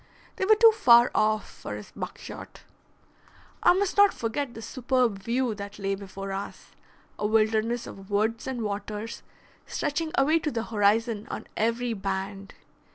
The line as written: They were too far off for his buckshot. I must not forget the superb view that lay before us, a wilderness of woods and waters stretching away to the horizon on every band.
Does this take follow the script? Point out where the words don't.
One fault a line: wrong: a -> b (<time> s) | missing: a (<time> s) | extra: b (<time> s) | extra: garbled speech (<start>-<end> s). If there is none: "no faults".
no faults